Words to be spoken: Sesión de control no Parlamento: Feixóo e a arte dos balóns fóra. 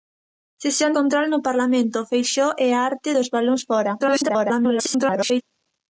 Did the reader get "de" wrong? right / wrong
wrong